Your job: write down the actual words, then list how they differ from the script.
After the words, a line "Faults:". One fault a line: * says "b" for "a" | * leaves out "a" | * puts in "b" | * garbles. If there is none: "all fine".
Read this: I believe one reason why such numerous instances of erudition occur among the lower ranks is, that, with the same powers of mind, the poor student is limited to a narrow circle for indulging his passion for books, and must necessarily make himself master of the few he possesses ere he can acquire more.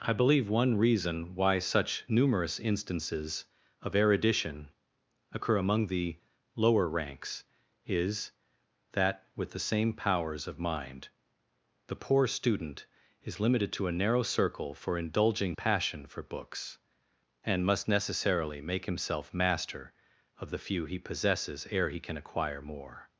I believe one reason why such numerous instances of erudition occur among the lower ranks is, that, with the same powers of mind, the poor student is limited to a narrow circle for indulging passion for books, and must necessarily make himself master of the few he possesses ere he can acquire more.
Faults:
* leaves out "his"